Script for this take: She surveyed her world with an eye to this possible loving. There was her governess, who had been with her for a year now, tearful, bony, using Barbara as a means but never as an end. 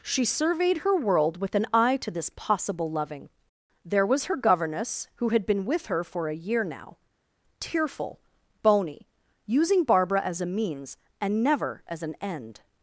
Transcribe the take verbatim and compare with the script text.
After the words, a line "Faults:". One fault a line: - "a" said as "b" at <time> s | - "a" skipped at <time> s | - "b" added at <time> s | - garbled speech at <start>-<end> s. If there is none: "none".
She surveyed her world with an eye to this possible loving. There was her governess, who had been with her for a year now, tearful, bony, using Barbara as a means and never as an end.
Faults:
- "but" said as "and" at 11.2 s